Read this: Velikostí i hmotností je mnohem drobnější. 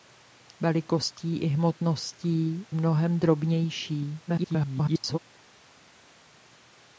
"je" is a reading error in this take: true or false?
true